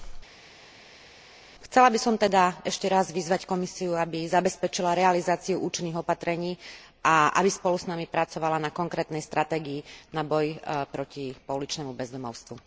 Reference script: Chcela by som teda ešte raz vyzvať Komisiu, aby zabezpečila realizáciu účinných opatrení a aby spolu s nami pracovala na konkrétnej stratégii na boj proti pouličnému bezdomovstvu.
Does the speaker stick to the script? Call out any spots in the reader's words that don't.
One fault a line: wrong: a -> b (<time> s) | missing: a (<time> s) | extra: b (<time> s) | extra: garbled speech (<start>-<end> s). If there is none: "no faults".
no faults